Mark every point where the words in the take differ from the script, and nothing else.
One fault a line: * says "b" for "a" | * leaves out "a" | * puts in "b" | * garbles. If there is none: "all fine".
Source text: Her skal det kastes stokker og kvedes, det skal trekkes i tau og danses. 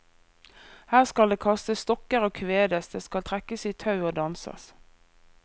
all fine